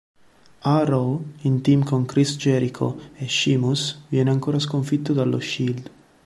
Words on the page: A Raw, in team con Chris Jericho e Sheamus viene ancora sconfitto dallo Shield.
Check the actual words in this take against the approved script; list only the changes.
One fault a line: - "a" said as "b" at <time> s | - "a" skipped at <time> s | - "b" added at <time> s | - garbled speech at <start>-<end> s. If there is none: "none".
none